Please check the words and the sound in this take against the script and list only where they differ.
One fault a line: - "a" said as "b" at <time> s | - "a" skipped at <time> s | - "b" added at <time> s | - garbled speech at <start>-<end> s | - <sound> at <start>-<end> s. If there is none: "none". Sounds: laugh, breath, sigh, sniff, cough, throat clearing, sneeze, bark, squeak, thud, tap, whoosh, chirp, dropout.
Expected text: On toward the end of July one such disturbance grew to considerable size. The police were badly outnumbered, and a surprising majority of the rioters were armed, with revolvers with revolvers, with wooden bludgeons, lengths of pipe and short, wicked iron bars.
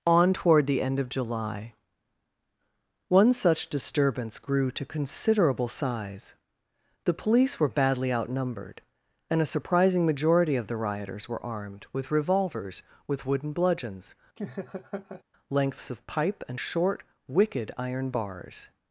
- "revolvers with" skipped at 13.2 s
- laugh at 14.4-15.2 s